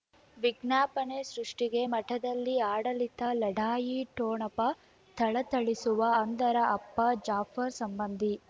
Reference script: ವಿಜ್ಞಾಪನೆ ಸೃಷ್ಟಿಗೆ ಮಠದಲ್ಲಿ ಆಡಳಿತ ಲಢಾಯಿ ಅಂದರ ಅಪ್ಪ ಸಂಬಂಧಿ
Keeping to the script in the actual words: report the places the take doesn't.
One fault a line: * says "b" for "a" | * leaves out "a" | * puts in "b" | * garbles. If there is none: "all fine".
* puts in "ಠೊಣಪ ಥಳಥಳಿಸುವ"
* puts in "ಜಾಫರ್"